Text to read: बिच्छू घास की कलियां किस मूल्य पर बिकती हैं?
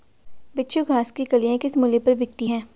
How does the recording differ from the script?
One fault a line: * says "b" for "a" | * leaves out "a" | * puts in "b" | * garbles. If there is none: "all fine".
all fine